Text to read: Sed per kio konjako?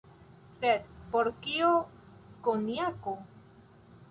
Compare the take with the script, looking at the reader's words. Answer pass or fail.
fail